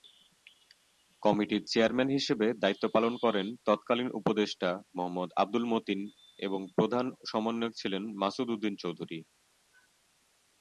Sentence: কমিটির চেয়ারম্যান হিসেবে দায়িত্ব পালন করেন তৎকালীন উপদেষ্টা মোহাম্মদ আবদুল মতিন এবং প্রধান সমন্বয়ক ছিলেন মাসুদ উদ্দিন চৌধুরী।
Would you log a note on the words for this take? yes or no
no